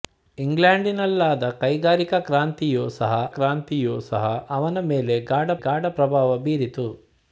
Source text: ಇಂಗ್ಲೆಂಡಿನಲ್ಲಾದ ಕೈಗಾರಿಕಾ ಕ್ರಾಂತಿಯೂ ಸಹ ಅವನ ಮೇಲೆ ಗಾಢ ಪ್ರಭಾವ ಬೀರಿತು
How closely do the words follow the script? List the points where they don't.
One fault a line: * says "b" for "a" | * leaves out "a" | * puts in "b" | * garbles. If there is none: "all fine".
* puts in "ಕ್ರಾಂತಿಯೂ ಸಹ"
* puts in "ಗಾಢ"